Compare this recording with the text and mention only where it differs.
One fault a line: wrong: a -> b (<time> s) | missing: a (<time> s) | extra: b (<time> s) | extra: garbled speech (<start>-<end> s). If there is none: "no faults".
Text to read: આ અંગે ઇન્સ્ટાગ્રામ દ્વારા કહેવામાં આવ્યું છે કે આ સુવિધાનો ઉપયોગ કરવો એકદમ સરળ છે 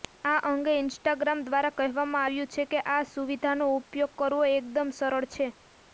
no faults